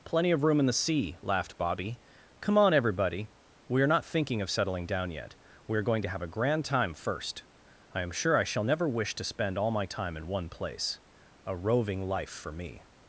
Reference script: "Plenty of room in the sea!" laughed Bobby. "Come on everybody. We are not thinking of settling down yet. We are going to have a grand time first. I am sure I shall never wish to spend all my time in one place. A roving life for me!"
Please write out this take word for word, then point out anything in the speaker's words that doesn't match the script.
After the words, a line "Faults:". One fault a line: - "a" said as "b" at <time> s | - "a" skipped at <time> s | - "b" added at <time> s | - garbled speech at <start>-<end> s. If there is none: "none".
"Plenty of room in the sea!" laughed Bobby. "Come on everybody. We are not thinking of settling down yet. We are going to have a grand time first. I am sure I shall never wish to spend all my time in one place. A roving life for me!"
Faults:
none